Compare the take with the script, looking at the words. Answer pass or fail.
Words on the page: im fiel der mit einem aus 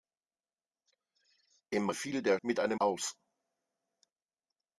pass